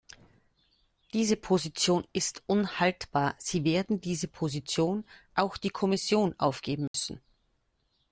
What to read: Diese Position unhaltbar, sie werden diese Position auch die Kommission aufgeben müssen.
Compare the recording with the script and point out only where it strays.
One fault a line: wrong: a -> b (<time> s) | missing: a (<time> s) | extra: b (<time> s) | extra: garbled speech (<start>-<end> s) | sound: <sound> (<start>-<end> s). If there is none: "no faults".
extra: ist (2.1 s)
sound: dropout (6.9-6.9 s)